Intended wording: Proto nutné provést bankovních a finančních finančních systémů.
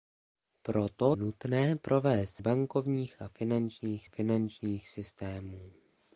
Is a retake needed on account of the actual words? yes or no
no